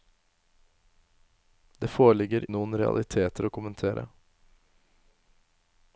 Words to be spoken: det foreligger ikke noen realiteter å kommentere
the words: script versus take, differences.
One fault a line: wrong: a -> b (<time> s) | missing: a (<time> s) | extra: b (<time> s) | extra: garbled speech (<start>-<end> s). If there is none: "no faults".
missing: ikke (2.5 s)